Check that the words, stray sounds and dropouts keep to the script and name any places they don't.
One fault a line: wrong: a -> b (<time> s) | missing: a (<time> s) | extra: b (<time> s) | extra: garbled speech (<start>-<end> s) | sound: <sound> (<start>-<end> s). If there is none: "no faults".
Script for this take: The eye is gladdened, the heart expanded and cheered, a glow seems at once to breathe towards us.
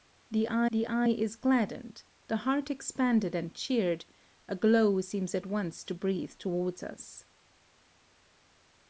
extra: the eye (0.7 s)